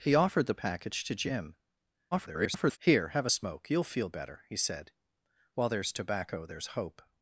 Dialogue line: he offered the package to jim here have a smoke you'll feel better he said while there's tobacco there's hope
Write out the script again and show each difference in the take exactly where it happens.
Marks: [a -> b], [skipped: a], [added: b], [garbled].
he offered the package to jim [garbled] here have a smoke you'll feel better he said while there's tobacco there's hope